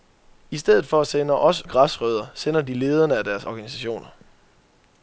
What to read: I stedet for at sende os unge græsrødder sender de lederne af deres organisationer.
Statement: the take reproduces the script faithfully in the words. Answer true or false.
false